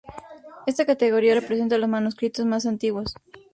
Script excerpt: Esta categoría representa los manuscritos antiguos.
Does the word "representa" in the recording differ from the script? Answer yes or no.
no